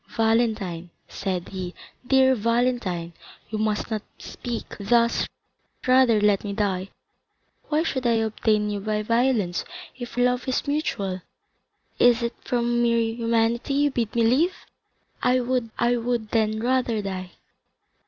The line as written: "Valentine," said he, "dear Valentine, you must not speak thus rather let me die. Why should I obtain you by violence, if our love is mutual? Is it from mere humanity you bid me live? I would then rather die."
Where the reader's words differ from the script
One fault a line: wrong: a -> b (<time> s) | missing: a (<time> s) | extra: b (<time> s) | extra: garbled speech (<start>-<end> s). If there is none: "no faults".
missing: our (10.2 s)
extra: I would (15.8 s)